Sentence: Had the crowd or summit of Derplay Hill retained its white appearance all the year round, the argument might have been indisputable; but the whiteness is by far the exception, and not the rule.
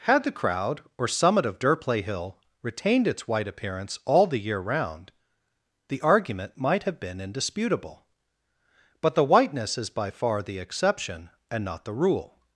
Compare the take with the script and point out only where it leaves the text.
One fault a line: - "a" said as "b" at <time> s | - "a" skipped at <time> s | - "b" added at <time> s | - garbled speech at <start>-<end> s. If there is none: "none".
none